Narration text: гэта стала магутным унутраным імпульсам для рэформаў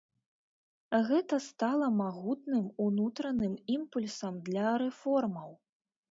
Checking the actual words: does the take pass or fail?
pass